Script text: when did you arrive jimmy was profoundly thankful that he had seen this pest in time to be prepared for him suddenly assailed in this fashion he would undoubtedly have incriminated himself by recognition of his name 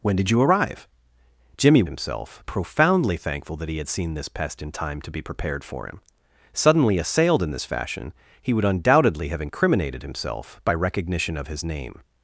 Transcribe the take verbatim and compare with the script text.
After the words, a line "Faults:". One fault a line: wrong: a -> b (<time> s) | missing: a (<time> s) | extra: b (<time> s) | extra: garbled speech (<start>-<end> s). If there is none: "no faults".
when did you arrive jimmy himself profoundly thankful that he had seen this pest in time to be prepared for him suddenly assailed in this fashion he would undoubtedly have incriminated himself by recognition of his name
Faults:
wrong: was -> himself (1.8 s)